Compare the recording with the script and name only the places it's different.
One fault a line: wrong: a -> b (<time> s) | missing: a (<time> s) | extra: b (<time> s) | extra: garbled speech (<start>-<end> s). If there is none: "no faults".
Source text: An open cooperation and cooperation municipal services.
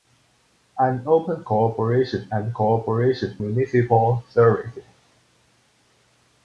no faults